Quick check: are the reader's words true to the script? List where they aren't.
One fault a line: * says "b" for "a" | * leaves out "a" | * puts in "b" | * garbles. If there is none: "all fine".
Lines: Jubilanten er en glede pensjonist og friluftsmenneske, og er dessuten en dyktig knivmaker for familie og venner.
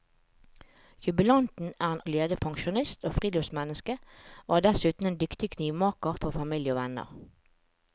all fine